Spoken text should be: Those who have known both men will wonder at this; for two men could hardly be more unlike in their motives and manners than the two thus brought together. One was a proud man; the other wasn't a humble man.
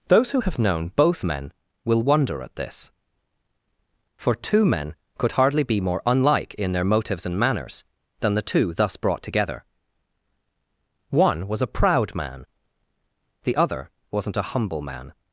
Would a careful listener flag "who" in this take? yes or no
no